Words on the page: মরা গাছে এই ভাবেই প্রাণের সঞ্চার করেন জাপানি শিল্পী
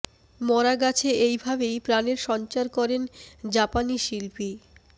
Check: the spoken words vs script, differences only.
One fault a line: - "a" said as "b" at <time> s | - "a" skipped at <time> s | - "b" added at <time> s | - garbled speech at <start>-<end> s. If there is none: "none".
none